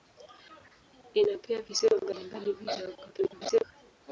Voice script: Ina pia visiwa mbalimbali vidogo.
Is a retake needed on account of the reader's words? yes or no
yes